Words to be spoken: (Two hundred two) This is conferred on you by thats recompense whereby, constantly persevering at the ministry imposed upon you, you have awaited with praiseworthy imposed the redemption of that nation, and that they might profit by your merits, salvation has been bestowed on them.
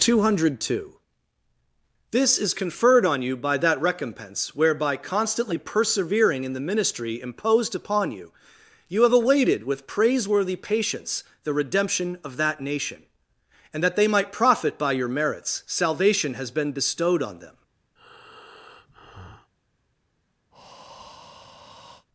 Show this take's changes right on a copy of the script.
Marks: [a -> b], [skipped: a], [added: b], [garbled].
(Two hundred two) This is conferred on you by [thats -> that] recompense whereby, constantly persevering [at -> in] the ministry imposed upon you, you have awaited with praiseworthy [imposed -> patience] the redemption of that nation, and that they might profit by your merits, salvation has been bestowed on them.